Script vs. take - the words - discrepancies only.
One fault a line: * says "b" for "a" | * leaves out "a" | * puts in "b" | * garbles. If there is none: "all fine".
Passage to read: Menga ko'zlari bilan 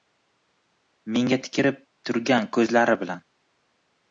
* puts in "tikilib turgan"